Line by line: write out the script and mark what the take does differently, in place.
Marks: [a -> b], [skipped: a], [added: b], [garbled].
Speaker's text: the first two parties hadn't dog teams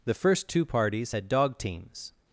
the first two parties [hadn't -> had] dog teams